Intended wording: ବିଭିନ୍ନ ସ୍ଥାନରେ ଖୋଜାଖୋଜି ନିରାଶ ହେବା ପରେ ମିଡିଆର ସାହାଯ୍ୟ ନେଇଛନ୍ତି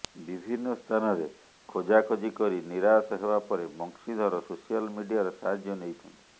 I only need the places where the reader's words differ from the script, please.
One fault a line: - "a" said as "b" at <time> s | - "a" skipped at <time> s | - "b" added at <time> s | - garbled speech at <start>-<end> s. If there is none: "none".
- "କରି" added at 2.4 s
- "ବଂଶୀଧର ସୋସିଆଲ" added at 3.8 s